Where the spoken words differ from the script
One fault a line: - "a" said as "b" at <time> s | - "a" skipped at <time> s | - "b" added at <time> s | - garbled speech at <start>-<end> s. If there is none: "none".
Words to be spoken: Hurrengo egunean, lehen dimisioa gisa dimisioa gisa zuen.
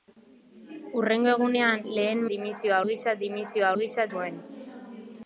none